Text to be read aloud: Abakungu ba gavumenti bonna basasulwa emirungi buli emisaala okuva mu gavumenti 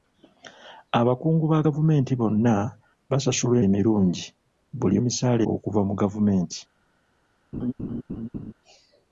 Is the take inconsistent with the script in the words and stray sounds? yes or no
yes